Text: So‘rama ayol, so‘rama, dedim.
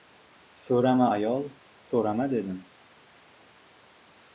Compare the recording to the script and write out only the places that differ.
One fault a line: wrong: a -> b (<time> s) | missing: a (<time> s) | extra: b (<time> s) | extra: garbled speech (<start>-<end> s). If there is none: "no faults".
no faults